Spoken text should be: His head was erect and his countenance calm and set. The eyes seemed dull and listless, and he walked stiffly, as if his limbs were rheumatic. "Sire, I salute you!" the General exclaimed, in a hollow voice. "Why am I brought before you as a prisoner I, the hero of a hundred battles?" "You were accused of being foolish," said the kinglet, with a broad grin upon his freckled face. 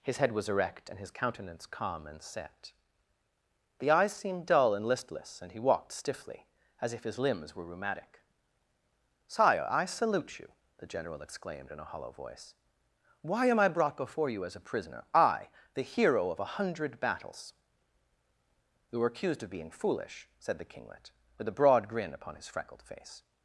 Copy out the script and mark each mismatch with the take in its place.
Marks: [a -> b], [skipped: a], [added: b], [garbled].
His head was erect and his countenance calm and set. The eyes seemed dull and listless, and he walked stiffly, as if his limbs were rheumatic. "Sire, I salute you!" the General exclaimed, in a hollow voice. "Why am I brought before you as a prisoner I, the hero of a hundred battles?" "You were accused of being foolish," said the kinglet, with a broad grin upon his freckled face.